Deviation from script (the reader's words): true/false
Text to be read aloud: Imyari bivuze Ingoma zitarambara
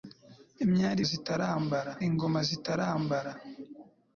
true